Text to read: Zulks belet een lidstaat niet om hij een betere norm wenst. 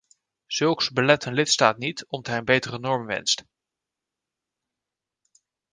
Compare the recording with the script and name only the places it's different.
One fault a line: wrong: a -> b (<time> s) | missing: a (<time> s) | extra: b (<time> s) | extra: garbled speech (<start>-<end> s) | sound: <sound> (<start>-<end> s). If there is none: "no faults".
no faults